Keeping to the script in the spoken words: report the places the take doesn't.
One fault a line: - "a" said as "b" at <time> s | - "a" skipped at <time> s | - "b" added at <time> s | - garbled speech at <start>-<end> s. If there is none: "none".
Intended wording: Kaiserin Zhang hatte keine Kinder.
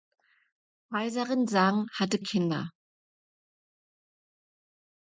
- "keine" skipped at 2.2 s